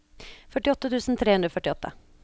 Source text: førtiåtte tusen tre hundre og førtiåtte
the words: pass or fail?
pass